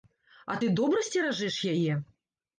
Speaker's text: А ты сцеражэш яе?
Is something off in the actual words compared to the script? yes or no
yes